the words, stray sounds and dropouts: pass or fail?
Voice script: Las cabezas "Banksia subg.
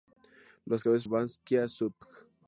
pass